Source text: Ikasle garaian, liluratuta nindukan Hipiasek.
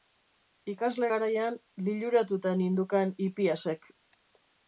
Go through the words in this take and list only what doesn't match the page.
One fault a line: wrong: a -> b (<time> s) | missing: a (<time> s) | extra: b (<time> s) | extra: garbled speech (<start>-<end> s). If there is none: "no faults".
no faults